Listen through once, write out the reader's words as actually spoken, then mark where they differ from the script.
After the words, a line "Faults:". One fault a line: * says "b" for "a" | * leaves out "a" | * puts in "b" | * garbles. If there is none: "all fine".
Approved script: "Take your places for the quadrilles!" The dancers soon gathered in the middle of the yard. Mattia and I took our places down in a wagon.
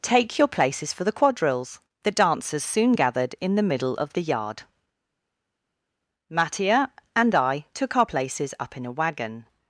"Take your places for the quadrilles!" The dancers soon gathered in the middle of the yard. Mattia and I took our places up in a wagon.
Faults:
* says "up" for "down"